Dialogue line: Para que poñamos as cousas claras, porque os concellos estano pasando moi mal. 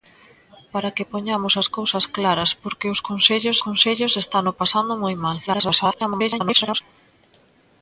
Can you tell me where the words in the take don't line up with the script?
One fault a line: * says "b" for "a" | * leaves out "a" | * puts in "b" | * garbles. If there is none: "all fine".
* puts in "concellos"
* garbles